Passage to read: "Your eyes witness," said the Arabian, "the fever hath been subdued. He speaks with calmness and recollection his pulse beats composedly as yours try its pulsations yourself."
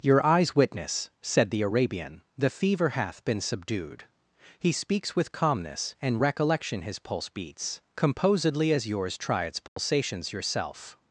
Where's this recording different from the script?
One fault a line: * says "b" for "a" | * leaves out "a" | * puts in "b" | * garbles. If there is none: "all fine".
all fine